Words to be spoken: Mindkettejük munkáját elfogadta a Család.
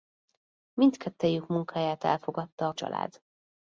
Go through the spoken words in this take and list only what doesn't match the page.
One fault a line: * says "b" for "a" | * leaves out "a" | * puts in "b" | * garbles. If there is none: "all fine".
all fine